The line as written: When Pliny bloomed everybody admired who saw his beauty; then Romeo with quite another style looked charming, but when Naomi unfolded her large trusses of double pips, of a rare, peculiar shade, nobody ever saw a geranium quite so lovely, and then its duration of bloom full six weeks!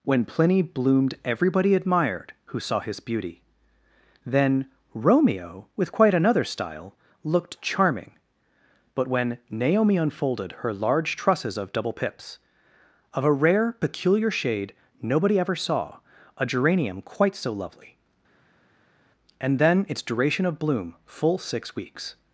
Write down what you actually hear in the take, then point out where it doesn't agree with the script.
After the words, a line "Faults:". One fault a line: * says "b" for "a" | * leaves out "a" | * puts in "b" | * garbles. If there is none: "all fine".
When Pliny bloomed everybody admired who saw his beauty; then Romeo with quite another style looked charming, but when Naomi unfolded her large trusses of double pips, of a rare, peculiar shade, nobody ever saw a geranium quite so lovely, and then its duration of bloom full six weeks!
Faults:
all fine